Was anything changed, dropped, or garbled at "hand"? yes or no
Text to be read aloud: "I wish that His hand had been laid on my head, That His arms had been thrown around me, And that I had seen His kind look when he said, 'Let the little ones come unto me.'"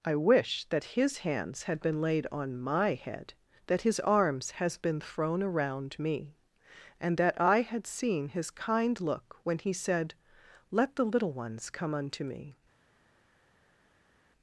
yes